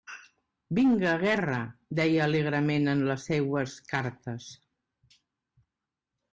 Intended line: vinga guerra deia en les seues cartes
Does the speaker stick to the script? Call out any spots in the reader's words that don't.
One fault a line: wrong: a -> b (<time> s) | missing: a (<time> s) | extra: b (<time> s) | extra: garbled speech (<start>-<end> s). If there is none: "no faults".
extra: alegrement (2.2 s)